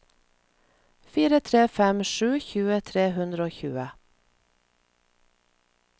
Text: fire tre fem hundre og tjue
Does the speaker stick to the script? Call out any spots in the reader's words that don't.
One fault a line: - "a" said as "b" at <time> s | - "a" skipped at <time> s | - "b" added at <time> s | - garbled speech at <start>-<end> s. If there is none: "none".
- "sju tjue tre" added at 2.1 s